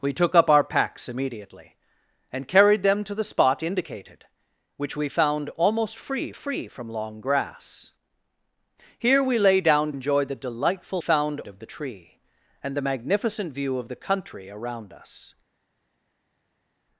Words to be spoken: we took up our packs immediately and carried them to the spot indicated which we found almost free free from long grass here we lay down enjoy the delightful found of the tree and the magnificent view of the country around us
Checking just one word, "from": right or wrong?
right